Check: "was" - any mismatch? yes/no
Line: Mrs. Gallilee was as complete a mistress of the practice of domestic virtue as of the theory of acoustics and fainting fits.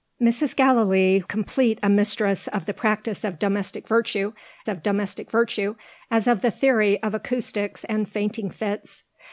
yes